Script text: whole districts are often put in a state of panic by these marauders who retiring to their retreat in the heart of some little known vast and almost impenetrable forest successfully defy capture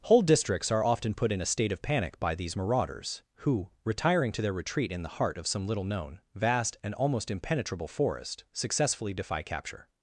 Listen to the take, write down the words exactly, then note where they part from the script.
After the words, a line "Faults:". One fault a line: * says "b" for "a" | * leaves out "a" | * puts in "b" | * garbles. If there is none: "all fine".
whole districts are often put in a state of panic by these marauders who retiring to their retreat in the heart of some little known vast and almost impenetrable forest successfully defy capture
Faults:
all fine